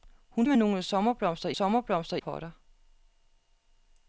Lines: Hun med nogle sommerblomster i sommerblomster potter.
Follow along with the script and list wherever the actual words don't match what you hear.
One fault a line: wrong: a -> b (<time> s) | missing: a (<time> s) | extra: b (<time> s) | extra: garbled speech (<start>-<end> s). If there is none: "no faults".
no faults